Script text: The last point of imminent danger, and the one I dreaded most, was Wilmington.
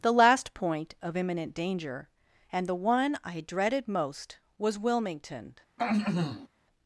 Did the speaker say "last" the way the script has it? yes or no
yes